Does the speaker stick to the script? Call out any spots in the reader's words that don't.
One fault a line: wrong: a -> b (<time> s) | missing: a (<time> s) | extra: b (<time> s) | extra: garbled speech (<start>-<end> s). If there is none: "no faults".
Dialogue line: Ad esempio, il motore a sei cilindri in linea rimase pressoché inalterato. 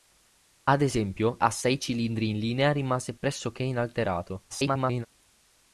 missing: il motore (1.4 s)
extra: garbled speech (4.5-5.1 s)